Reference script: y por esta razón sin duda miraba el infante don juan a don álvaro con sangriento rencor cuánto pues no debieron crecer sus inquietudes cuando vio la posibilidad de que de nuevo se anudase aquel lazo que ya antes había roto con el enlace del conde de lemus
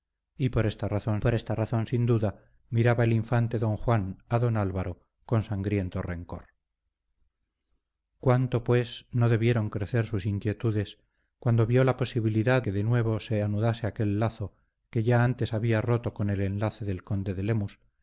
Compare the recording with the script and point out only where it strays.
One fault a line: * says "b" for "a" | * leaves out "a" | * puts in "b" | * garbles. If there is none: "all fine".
* puts in "por esta razón"
* leaves out "de"